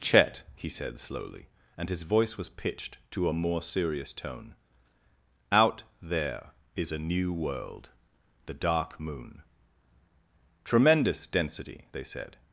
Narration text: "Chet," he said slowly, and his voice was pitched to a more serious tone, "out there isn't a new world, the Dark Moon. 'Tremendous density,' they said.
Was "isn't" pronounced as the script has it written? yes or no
no